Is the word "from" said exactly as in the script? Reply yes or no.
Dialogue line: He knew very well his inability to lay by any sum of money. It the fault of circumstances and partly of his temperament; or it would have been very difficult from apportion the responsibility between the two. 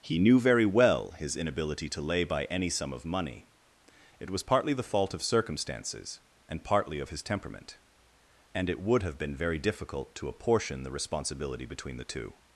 no